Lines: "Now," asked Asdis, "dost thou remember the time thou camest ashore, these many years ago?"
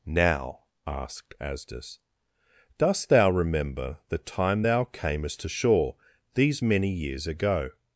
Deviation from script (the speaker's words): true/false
false